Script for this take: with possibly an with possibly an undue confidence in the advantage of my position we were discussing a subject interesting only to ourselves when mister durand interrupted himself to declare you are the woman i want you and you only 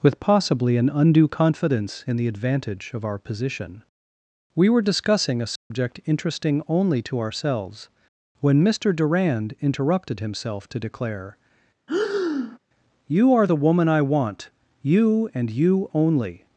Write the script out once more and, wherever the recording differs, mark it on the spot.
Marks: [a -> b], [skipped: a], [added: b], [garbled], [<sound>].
with possibly an [skipped: with possibly an] undue confidence in the advantage of [my -> our] position we were discussing a subject [dropout] interesting only to ourselves when mister durand interrupted himself to declare [breath] you are the woman i want you and you only